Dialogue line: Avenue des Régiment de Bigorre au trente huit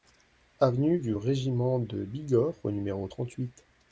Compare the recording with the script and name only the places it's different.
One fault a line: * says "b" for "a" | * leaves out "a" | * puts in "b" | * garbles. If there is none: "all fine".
* says "du" for "des"
* puts in "numéro"